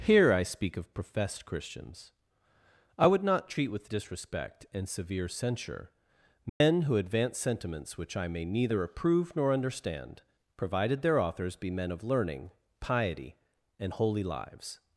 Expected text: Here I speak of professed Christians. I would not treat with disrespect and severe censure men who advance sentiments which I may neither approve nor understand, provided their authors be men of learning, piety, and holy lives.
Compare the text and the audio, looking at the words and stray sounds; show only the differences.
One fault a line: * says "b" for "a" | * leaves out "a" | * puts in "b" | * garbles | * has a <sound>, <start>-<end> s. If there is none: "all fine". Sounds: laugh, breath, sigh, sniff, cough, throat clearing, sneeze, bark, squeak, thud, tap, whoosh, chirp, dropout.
* has a dropout, 6.5-6.6 s